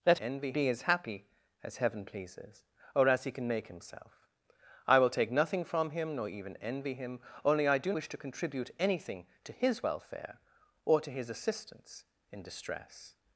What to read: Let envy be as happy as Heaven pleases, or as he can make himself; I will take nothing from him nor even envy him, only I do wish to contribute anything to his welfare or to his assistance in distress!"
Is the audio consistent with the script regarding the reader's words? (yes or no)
yes